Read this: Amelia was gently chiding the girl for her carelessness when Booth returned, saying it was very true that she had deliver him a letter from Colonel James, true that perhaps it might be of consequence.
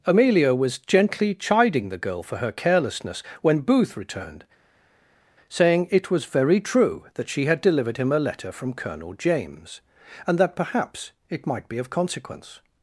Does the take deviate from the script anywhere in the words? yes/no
yes